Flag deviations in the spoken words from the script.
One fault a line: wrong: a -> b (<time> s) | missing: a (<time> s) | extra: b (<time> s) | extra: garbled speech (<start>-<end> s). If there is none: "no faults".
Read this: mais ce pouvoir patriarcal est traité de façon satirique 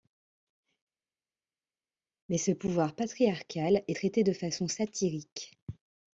no faults